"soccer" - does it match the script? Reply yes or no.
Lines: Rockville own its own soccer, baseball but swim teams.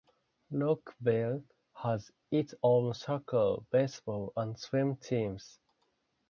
yes